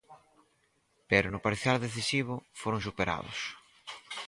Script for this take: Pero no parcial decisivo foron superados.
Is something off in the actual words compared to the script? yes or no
no